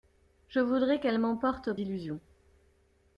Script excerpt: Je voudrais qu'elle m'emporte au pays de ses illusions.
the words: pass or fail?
fail